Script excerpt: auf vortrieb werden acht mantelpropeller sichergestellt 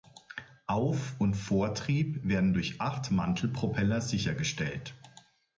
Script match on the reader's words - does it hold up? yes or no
no